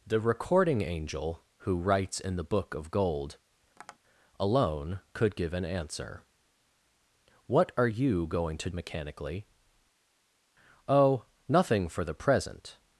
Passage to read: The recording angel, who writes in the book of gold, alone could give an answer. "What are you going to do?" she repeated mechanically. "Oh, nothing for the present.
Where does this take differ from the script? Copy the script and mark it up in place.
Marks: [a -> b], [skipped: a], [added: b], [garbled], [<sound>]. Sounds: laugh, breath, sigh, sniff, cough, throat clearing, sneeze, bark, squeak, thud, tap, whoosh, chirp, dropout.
The recording angel, who writes in the book of gold, [tap] alone could give an answer. "What are you going to [skipped: do?" she repeated] mechanically. "Oh, nothing for the present.